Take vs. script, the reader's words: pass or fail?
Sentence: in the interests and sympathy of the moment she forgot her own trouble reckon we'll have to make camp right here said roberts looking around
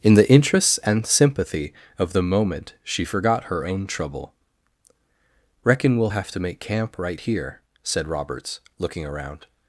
pass